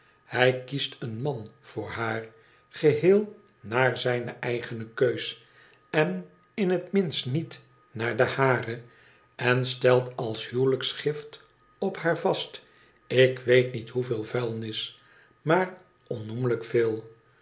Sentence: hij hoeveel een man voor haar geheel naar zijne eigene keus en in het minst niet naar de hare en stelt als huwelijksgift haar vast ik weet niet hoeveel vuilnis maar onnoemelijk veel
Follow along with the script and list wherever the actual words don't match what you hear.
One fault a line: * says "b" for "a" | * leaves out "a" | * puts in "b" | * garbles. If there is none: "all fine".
* says "kiest" for "hoeveel"
* puts in "op"